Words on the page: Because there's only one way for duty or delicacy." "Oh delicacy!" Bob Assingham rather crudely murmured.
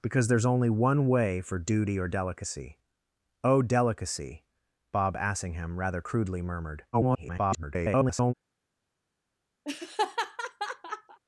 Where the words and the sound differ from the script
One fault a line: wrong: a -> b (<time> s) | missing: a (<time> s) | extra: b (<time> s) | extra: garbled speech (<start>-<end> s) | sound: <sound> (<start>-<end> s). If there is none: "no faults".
extra: garbled speech (6.9-8.3 s)
sound: laugh (9.6-11.2 s)